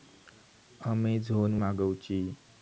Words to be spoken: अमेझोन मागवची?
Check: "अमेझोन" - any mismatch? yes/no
no